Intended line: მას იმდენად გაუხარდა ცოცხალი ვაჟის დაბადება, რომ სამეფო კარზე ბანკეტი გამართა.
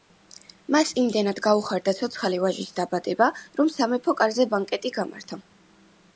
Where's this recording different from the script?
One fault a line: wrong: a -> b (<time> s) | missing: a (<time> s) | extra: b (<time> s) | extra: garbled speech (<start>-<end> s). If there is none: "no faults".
no faults